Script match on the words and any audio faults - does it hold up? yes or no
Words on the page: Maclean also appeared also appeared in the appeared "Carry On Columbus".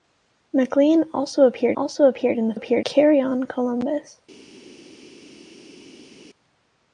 yes